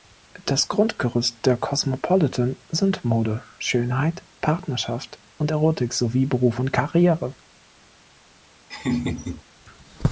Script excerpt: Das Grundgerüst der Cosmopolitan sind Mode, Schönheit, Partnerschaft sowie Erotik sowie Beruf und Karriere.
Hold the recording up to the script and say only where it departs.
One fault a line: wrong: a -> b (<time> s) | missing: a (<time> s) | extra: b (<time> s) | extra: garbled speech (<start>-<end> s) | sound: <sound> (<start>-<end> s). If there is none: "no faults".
wrong: sowie -> und (5.4 s)
sound: laugh (8.7-9.4 s)